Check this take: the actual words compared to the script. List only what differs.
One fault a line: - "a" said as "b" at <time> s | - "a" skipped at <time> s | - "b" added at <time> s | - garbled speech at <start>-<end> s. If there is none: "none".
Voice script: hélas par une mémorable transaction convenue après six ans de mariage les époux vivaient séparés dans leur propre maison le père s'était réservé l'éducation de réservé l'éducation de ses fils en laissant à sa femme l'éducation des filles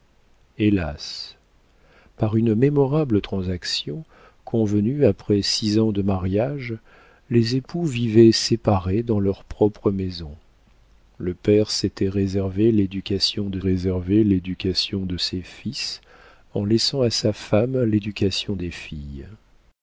none